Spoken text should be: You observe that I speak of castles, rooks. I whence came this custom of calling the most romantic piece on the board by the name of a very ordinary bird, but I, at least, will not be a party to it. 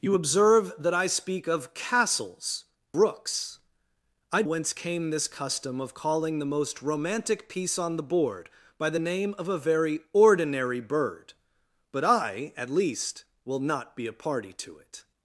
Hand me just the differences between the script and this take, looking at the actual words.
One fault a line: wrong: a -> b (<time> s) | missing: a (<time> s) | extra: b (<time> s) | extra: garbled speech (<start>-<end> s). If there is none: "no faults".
no faults